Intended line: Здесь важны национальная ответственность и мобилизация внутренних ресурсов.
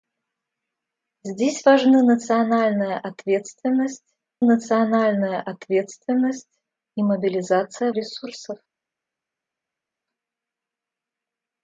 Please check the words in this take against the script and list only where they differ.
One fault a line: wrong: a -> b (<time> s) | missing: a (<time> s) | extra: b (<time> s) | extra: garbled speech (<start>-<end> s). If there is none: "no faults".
extra: национальная ответственность (4.4 s)
missing: внутренних (7.9 s)